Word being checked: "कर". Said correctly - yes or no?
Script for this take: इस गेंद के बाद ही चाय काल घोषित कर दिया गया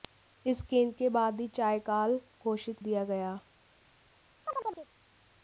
no